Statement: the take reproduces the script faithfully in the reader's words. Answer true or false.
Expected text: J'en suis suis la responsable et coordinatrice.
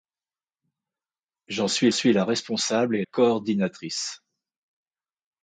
true